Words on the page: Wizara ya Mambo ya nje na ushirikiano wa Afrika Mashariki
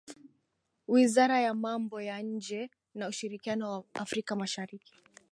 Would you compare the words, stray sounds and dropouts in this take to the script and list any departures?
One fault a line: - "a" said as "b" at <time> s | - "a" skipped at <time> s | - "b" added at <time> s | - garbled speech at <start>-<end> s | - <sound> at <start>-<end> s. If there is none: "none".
none